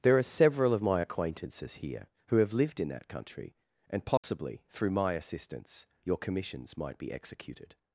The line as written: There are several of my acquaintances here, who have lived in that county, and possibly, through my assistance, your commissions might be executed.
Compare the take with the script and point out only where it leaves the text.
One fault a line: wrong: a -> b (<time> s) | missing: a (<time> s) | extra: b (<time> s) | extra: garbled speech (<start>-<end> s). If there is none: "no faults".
wrong: county -> country (3.1 s)